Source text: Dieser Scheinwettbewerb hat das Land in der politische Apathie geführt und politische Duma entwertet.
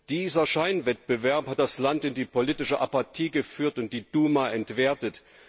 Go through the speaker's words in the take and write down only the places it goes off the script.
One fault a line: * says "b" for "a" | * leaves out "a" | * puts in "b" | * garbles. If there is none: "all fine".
* says "die" for "der"
* says "die" for "politische"